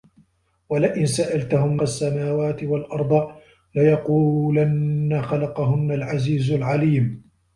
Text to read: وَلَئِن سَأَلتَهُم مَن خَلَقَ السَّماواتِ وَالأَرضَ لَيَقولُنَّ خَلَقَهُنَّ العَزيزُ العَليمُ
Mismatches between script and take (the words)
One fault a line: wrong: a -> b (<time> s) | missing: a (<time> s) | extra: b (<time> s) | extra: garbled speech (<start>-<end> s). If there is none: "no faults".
missing: مَن خَلَقَ (1.8 s)